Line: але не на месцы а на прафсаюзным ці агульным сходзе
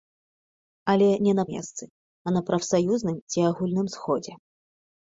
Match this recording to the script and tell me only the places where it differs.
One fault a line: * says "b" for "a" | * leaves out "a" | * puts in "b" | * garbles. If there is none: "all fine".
all fine